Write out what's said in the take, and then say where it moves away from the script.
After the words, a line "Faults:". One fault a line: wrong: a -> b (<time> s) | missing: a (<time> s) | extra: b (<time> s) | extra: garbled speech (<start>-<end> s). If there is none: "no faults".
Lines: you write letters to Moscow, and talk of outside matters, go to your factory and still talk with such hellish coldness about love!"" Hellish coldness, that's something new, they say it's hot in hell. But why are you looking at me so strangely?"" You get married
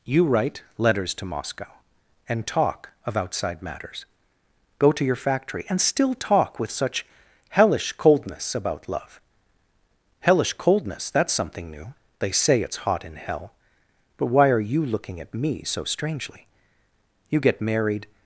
you write letters to Moscow, and talk of outside matters, go to your factory and still talk with such hellish coldness about love!"" Hellish coldness, that's something new, they say it's hot in hell. But why are you looking at me so strangely?"" You get married
Faults:
no faults